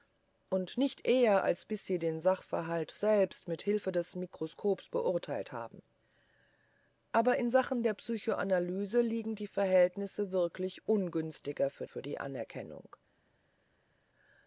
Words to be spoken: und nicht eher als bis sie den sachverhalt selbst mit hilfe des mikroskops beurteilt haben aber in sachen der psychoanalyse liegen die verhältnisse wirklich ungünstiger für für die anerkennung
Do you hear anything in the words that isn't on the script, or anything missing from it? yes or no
no